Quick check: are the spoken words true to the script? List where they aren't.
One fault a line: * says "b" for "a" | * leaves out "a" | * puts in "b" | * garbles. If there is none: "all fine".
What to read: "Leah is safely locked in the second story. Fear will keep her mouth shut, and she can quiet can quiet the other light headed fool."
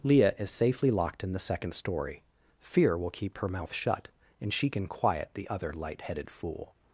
* leaves out "can quiet"